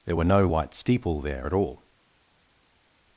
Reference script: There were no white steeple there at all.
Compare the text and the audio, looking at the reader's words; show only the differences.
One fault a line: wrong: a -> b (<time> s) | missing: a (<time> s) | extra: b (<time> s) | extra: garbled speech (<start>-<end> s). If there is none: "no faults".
no faults